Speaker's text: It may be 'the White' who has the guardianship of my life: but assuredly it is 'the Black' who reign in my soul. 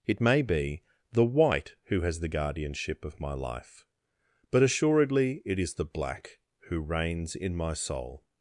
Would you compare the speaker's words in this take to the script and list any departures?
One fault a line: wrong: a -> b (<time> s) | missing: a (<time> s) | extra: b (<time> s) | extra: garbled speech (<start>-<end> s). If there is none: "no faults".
wrong: reign -> reigns (6.8 s)